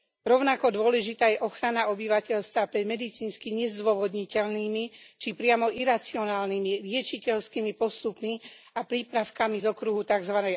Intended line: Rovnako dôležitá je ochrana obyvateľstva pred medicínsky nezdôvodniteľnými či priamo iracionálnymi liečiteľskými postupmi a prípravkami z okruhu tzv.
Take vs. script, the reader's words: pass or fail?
pass